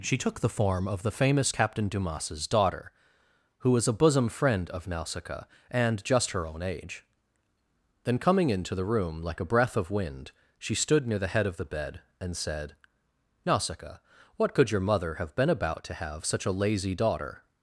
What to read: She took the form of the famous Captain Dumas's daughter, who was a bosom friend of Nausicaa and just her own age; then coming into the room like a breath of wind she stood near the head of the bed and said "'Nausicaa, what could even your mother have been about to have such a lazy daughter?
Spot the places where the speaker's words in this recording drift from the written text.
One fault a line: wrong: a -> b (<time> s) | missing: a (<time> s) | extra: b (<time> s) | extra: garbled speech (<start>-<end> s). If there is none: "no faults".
missing: even (14.7 s)